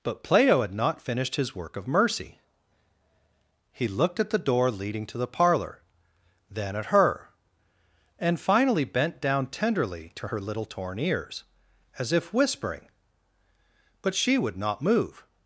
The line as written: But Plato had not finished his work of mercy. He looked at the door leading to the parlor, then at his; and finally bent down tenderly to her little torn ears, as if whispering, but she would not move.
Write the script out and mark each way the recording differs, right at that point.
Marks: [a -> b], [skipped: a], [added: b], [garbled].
But Plato had not finished his work of mercy. He looked at the door leading to the parlor, then at [his; -> her] and finally bent down tenderly to her little torn ears, as if whispering, but she would not move.